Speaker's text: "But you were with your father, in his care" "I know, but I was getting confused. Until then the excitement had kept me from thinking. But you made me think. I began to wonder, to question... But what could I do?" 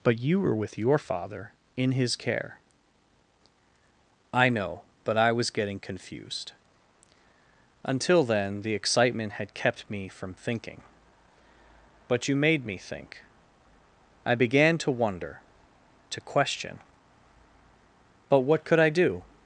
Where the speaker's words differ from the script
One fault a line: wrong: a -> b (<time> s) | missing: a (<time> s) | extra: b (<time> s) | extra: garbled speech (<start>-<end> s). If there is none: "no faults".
no faults